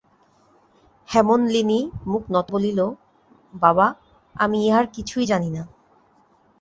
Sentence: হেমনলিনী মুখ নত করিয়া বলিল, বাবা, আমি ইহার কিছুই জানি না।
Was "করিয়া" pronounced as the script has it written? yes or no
no